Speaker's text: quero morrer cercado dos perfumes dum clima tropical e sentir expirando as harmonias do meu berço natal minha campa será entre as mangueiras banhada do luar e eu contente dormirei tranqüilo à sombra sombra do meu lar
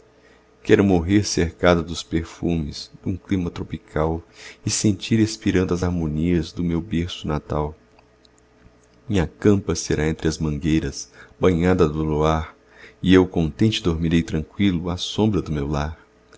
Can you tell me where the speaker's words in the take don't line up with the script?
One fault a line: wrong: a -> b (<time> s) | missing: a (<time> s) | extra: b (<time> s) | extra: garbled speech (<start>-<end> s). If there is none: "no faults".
missing: sombra (15.4 s)